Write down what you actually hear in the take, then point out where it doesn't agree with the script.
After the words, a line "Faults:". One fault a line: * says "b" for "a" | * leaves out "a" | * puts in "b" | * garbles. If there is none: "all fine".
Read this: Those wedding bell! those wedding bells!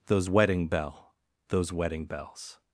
Those wedding bell! those wedding bells!
Faults:
all fine